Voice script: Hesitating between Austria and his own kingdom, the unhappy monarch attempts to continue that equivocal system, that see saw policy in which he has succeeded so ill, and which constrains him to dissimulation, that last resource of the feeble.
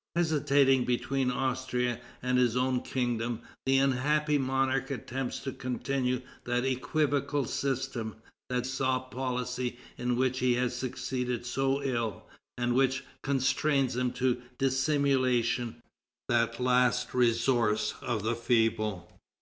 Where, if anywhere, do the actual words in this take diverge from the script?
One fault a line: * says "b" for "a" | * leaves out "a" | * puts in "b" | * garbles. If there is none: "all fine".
* leaves out "see"